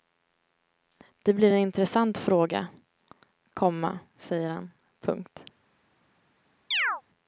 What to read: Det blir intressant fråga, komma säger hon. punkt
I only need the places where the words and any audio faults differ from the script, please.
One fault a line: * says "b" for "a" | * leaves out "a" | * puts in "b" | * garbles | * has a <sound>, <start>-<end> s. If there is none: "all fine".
* puts in "en"
* says "han" for "hon"
* has a chirp, 6.7-7.0 s